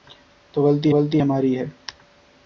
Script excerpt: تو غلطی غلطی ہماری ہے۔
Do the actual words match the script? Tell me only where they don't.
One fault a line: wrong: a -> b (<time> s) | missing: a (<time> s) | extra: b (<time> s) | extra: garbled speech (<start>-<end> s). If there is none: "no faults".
no faults